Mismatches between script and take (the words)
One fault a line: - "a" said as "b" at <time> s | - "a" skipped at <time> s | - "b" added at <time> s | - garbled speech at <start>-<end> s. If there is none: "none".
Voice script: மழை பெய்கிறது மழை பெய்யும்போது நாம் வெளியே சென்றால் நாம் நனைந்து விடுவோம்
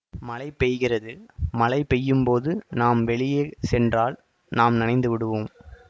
none